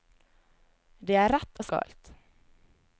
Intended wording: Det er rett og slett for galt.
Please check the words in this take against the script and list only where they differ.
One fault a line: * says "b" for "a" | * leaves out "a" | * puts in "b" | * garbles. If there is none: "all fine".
* leaves out "slett for"